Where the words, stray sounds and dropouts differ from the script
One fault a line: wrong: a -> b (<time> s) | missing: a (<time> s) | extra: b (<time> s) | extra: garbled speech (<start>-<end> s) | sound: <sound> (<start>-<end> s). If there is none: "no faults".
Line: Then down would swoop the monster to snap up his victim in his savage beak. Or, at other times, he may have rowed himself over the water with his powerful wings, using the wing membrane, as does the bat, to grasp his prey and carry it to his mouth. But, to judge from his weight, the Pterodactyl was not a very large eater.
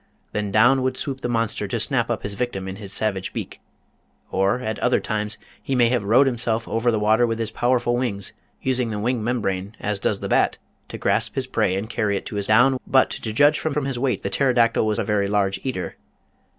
wrong: mouth -> down (12.5 s)
extra: from (13.7 s)
missing: not (15.0 s)